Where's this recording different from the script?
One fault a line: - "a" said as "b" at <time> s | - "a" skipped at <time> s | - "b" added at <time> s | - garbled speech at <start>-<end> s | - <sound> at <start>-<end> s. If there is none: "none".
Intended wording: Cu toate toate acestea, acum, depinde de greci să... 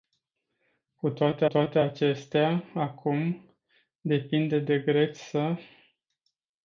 none